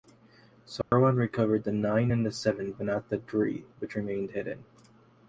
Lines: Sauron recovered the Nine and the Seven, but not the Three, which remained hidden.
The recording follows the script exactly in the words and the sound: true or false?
false